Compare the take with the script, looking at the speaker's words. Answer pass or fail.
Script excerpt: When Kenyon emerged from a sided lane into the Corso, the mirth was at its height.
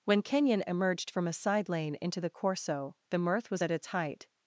fail